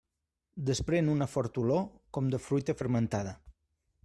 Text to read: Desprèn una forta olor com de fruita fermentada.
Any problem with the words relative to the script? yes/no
no